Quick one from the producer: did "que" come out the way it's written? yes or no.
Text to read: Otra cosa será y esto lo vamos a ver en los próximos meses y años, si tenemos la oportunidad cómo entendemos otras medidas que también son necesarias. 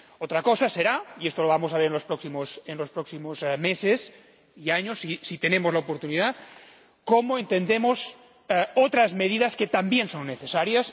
yes